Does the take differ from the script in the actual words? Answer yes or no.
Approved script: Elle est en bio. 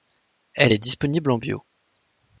yes